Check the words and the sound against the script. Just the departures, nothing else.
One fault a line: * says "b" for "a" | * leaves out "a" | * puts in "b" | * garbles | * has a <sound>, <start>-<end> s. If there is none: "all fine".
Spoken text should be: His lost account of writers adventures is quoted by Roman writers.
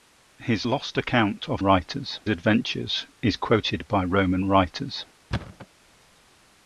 * has a thud, 5.3-5.7 s